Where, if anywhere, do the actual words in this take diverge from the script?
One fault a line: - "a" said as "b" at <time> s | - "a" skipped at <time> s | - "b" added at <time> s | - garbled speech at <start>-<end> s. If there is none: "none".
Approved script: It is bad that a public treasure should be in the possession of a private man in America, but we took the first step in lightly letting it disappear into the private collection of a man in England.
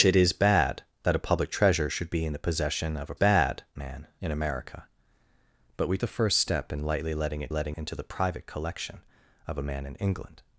- "private" said as "bad" at 3.1 s
- "took" skipped at 6.0 s
- "disappear" said as "letting" at 7.5 s